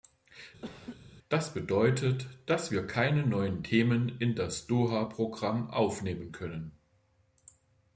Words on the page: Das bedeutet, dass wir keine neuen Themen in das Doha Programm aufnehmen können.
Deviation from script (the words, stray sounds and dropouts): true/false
true